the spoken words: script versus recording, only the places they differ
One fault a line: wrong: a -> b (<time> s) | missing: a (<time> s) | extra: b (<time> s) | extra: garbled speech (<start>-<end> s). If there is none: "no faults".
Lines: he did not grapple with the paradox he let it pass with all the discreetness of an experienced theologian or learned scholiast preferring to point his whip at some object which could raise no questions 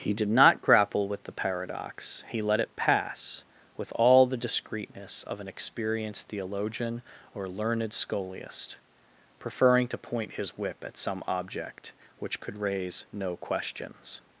no faults